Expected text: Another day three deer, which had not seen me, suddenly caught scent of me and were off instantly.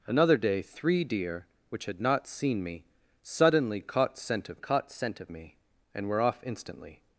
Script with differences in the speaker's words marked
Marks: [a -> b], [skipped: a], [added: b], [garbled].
Another day three deer, which had not seen me, suddenly caught scent of [added: caught scent of] me and were off instantly.